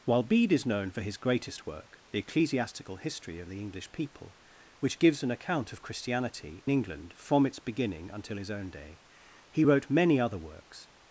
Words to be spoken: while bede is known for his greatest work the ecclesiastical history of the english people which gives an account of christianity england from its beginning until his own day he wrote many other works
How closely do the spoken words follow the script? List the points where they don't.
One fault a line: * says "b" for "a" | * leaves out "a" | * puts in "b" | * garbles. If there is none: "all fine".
all fine